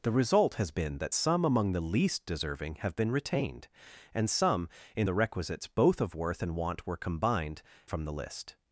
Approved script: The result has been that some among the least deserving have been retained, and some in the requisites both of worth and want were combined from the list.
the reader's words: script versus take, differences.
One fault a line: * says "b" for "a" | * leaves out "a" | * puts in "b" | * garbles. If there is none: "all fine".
all fine